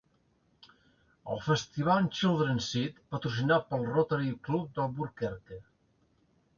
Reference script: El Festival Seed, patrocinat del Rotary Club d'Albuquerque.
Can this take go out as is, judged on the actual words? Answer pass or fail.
fail